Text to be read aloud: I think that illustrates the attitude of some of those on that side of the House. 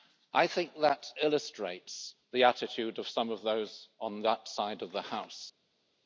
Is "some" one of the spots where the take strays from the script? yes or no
no